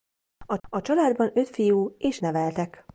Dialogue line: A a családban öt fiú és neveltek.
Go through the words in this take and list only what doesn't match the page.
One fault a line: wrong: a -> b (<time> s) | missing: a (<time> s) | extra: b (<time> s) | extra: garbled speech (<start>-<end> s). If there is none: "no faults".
no faults